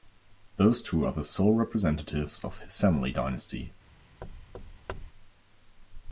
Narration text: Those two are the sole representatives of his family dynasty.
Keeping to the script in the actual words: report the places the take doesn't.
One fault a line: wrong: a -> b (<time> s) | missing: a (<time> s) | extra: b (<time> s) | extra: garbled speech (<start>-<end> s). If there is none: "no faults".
no faults